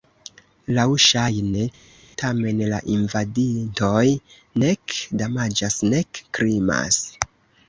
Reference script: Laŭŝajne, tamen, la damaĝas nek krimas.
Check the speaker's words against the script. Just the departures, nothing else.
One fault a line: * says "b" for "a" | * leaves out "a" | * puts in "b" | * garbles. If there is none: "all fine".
* puts in "invadintoj nek"